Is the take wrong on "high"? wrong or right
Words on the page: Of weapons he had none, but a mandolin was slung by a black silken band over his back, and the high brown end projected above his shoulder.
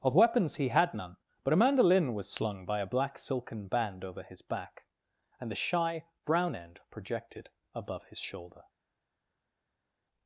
wrong